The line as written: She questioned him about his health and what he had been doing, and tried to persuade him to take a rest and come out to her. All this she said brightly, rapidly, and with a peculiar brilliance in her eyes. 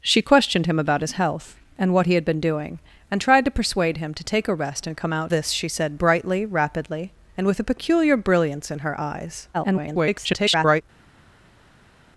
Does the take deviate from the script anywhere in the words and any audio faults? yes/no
yes